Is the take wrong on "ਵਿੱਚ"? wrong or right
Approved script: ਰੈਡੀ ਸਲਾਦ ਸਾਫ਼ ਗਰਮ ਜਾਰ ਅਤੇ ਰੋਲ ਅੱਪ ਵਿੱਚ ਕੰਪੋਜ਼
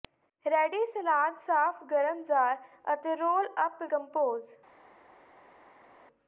wrong